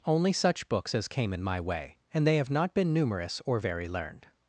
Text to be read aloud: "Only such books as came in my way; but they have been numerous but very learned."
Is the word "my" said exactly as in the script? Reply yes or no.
yes